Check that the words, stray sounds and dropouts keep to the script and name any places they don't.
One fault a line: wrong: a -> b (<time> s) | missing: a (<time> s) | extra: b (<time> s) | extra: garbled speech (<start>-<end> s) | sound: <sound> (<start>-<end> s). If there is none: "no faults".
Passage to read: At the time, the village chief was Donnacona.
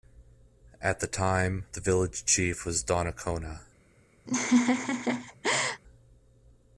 sound: laugh (4.3-5.8 s)